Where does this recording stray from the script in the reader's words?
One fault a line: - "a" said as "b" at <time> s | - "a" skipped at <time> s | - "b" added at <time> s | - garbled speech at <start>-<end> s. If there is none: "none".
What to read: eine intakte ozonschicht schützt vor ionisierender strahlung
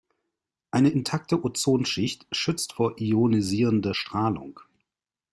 none